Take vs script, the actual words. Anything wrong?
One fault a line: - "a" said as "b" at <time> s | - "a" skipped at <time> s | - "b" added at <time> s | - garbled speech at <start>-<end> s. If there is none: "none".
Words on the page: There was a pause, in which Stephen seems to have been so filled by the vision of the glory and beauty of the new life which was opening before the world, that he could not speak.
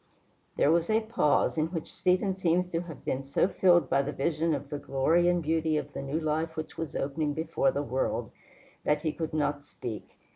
none